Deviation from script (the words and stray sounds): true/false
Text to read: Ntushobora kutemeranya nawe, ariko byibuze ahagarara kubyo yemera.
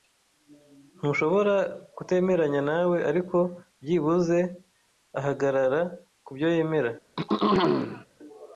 true